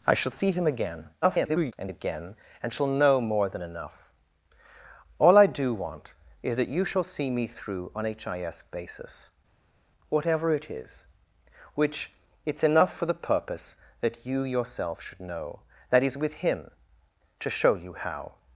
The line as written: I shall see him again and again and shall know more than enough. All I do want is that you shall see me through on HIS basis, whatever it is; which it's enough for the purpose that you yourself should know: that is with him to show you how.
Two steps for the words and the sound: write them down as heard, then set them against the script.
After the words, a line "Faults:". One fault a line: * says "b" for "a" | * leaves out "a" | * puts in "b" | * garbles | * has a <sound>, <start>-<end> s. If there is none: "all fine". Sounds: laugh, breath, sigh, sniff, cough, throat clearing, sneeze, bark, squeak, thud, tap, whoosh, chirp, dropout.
I shall see him again [garbled] and again and shall know more than enough. All I do want is that you shall see me through on HIS basis, whatever it is; which it's enough for the purpose that you yourself should know: that is with him to show you how.
Faults:
* garbles